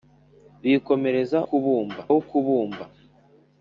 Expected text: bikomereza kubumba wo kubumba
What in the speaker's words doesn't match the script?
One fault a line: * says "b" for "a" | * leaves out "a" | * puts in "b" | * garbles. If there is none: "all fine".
all fine